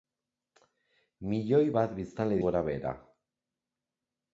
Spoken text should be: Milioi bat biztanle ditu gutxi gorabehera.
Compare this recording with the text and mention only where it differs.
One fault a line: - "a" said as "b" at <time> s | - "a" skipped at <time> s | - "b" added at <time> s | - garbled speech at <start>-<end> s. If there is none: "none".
- "ditu gutxi" skipped at 2.4 s